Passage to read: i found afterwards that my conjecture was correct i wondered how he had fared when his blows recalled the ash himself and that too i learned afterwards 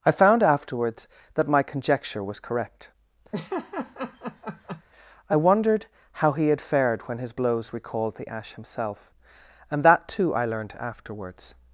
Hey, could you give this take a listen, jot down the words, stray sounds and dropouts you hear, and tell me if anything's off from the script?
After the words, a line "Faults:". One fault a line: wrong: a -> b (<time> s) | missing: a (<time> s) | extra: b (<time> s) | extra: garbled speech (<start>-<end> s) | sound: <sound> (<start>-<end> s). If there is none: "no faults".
i found afterwards that my conjecture was correct i wondered how he had fared when his blows recalled the ash himself and that too i learned afterwards
Faults:
sound: laugh (3.3-4.8 s)